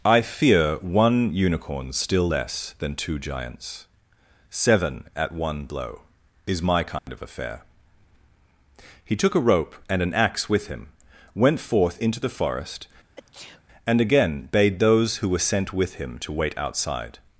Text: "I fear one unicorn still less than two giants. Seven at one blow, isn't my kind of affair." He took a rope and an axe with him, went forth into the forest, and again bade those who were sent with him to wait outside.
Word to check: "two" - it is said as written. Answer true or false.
true